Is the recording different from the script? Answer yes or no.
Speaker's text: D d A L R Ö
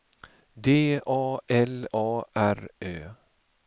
yes